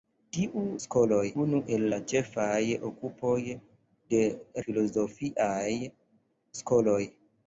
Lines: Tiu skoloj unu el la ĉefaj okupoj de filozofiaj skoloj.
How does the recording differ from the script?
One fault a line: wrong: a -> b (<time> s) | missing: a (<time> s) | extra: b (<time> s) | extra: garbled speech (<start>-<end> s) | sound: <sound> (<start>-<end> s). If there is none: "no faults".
no faults